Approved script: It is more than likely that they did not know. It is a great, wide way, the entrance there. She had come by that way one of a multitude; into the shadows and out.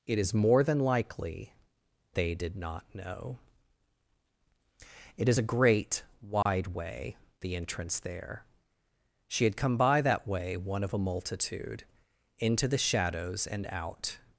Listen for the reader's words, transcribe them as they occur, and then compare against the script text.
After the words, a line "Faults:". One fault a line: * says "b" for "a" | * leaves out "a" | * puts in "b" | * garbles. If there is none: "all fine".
It is more than likely they did not know. It is a great, wide way, the entrance there. She had come by that way one of a multitude; into the shadows and out.
Faults:
* leaves out "that"